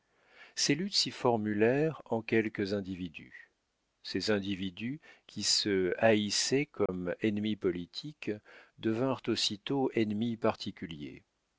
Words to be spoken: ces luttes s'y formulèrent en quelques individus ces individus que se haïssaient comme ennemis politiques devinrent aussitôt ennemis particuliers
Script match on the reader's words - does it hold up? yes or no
no